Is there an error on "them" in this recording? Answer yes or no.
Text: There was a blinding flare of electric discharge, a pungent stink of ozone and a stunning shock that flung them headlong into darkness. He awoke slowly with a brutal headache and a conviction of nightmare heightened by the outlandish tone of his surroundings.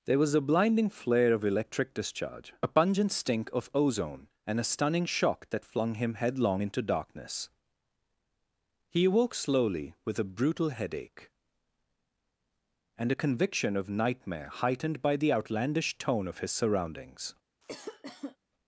yes